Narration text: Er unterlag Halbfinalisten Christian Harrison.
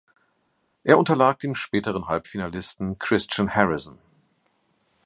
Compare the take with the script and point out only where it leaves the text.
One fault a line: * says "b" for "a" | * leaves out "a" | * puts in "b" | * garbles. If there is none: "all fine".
* puts in "dem späteren"